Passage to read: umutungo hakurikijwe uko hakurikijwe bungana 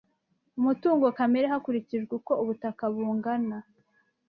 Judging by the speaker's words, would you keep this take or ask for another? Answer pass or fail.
fail